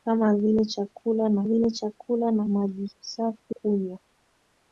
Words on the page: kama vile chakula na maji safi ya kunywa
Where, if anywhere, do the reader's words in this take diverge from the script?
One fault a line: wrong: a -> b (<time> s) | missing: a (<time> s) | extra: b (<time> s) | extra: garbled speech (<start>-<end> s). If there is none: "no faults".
extra: vile chakula na (1.4 s)
missing: ya (3.6 s)